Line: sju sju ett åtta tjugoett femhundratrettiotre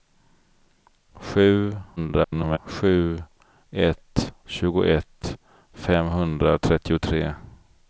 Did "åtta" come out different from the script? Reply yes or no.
yes